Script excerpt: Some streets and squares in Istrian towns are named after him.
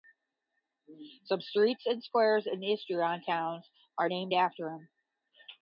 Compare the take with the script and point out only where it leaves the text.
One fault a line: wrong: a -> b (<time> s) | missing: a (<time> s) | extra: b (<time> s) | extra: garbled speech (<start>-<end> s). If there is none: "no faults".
no faults